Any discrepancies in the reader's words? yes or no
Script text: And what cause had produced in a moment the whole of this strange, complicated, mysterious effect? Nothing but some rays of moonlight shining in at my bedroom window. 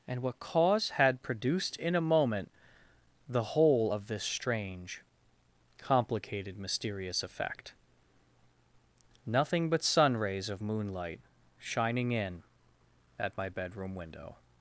yes